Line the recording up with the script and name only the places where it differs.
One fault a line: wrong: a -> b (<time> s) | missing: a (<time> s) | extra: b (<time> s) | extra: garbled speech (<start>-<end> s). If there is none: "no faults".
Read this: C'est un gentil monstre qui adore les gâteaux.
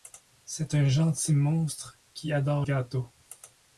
missing: les (2.7 s)